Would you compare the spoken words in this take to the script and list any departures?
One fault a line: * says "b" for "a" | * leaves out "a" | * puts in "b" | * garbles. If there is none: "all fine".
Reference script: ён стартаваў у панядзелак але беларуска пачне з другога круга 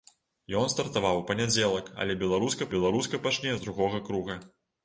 * puts in "беларуска"